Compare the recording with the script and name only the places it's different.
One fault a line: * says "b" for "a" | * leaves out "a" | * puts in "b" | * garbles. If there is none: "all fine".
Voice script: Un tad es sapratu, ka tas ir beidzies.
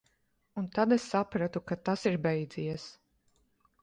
all fine